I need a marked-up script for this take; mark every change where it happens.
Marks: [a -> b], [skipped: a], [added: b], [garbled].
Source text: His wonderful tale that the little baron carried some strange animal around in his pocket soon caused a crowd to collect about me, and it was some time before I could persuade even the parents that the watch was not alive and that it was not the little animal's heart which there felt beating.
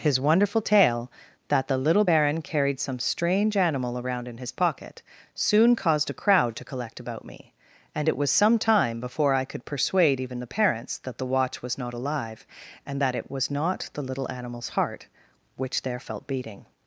His wonderful tale that the little baron carried some strange animal around in his pocket soon caused a crowd to collect about me, and it was some time before I could persuade even the parents that the watch was not alive and that it was not the little animal's heart which there felt beating.